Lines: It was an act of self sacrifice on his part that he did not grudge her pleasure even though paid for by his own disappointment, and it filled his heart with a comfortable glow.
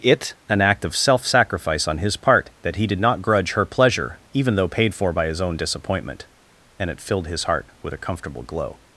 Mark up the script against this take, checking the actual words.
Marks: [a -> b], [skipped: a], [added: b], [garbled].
It [skipped: was] an act of self sacrifice on his part that he did not grudge her pleasure even though paid for by his own disappointment, and it filled his heart with a comfortable glow.